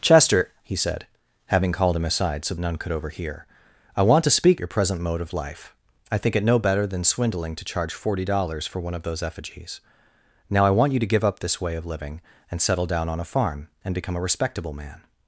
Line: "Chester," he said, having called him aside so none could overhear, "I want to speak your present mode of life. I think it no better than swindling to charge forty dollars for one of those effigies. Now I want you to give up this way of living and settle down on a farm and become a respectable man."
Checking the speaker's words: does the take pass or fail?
pass